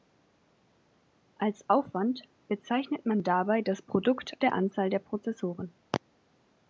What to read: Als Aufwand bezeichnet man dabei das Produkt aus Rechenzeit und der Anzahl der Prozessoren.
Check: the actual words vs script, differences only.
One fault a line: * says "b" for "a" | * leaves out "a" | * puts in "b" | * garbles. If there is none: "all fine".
* leaves out "aus Rechenzeit und"